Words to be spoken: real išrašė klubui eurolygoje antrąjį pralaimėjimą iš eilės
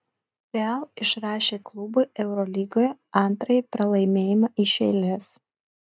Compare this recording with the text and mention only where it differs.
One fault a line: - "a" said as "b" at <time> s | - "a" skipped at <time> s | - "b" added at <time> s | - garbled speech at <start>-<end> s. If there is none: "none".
none